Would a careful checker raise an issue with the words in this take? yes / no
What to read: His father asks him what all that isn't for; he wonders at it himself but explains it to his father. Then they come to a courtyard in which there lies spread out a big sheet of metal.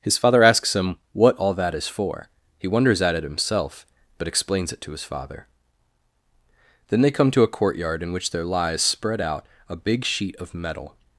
yes